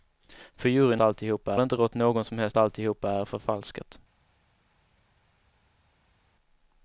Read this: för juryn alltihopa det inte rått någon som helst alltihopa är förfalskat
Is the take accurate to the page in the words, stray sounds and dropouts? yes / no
yes